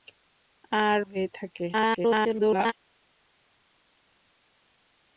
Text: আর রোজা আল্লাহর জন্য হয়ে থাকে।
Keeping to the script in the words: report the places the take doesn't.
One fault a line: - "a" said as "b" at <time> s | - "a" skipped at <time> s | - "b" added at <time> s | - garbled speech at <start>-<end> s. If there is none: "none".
- "রোজা আল্লাহর জন্য" skipped at 1.0 s
- garbled speech at 1.7-2.7 s